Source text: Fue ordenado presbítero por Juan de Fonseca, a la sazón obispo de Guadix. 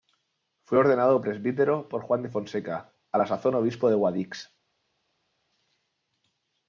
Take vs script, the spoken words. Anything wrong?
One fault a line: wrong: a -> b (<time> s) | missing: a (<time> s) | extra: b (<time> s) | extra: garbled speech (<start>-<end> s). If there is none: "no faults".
no faults